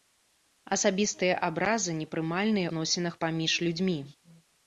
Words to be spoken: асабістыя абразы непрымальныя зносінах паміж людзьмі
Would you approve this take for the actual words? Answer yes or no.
yes